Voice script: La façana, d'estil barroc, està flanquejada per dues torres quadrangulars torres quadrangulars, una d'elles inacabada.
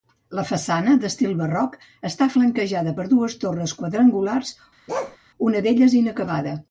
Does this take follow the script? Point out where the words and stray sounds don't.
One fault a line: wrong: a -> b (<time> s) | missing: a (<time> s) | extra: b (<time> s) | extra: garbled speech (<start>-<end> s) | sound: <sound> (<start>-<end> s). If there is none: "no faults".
missing: torres quadrangulars (4.6 s)
sound: bark (4.9-5.2 s)